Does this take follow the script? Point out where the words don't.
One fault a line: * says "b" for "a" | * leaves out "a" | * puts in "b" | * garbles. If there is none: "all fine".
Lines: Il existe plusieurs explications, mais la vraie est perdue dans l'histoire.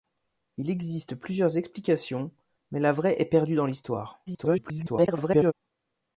* garbles